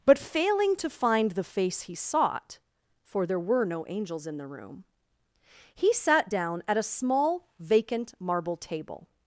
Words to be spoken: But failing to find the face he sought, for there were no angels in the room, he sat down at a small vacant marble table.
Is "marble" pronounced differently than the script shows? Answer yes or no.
no